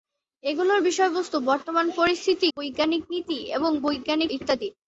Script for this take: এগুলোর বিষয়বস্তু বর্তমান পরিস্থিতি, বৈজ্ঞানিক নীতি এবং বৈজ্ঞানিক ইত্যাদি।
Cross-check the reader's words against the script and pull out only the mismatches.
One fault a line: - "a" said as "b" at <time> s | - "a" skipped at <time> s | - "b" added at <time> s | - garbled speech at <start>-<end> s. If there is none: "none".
none